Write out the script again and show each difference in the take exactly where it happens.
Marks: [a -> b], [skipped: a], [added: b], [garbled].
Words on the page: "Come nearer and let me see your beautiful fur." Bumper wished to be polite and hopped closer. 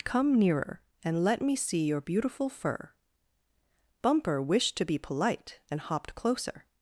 "Come nearer and let me see your beautiful fur." Bumper wished to be polite and hopped closer.